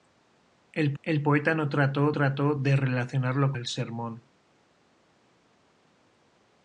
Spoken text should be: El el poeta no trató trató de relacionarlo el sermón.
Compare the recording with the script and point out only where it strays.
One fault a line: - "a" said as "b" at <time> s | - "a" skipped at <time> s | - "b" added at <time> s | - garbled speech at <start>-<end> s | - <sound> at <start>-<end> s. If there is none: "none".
none